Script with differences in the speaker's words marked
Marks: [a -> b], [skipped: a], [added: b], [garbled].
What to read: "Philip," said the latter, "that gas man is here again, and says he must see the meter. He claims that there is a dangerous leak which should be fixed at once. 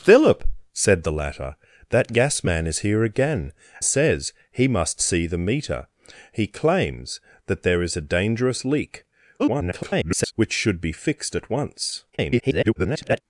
"Philip," said the latter, "that gas man is here again, [skipped: and] says he must see the meter. He claims that there is a dangerous leak [garbled] which should be fixed at once. [garbled]